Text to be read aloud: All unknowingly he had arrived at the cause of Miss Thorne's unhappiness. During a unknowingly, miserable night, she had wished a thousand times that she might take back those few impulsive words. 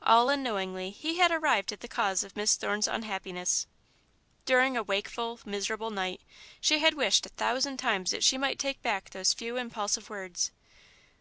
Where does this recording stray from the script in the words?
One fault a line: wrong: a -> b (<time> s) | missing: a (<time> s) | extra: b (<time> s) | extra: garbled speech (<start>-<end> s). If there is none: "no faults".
wrong: unknowingly -> wakeful (4.8 s)